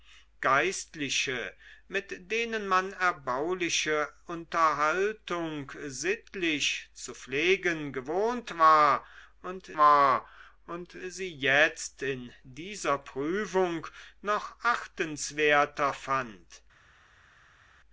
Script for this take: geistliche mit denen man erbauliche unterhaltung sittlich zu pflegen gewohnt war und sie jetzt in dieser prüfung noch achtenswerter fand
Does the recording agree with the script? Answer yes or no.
no